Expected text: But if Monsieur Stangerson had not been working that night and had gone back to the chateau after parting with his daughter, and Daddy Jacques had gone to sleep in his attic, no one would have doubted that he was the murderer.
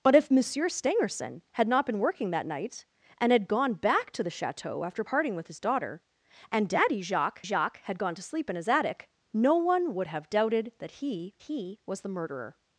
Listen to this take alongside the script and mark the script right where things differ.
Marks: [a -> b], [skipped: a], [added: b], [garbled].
But if Monsieur Stangerson had not been working that night and had gone back to the chateau after parting with his daughter, and Daddy Jacques [added: Jacques] had gone to sleep in his attic, no one would have doubted that he [added: he] was the murderer.